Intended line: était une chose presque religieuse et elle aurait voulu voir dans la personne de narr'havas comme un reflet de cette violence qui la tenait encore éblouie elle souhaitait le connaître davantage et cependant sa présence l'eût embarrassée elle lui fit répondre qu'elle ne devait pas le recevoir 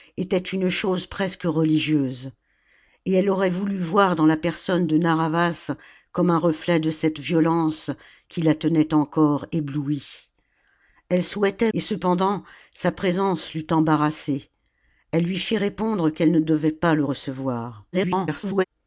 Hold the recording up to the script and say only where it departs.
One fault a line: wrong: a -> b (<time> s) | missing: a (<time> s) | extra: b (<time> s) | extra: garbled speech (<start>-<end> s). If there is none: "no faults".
missing: le connaître davantage (11.7 s)
extra: garbled speech (17.9-18.6 s)